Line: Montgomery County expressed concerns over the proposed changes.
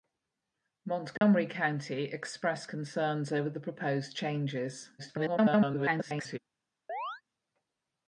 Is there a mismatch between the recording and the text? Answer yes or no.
yes